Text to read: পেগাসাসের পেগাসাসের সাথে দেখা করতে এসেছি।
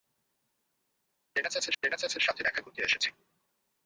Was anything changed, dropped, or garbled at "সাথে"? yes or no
no